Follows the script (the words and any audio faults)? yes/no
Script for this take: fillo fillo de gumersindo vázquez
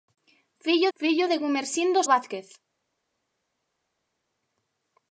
yes